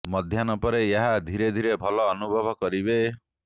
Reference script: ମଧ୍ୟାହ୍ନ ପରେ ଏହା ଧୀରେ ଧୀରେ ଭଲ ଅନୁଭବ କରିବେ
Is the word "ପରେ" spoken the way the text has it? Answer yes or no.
yes